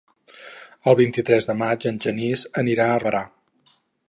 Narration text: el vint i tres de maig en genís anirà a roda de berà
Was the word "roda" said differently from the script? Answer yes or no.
yes